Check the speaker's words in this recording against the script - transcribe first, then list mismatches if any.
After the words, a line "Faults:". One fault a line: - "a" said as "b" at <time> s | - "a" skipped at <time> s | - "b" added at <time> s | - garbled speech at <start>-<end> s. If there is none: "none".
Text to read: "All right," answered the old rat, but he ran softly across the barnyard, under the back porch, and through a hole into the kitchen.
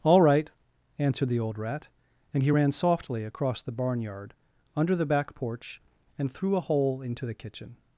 "All right," answered the old rat, and he ran softly across the barnyard, under the back porch, and through a hole into the kitchen.
Faults:
- "but" said as "and" at 2.3 s